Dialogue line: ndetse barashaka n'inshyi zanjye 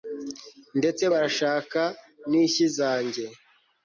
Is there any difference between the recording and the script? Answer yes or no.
no